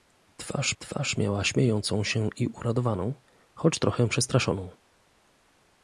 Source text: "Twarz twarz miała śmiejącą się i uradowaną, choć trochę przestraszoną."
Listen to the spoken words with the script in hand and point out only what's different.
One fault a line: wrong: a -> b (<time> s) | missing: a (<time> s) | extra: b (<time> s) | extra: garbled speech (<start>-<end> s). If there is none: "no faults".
no faults